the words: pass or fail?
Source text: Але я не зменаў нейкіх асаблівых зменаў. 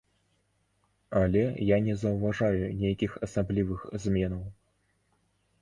fail